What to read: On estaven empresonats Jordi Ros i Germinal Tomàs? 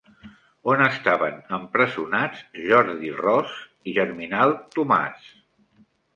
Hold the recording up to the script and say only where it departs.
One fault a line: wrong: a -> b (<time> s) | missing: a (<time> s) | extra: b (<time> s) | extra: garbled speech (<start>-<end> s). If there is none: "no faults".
no faults